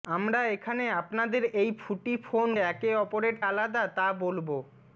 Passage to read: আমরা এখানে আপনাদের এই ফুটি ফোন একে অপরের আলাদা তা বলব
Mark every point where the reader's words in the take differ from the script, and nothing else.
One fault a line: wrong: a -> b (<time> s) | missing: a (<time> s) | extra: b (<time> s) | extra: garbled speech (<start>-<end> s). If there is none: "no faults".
no faults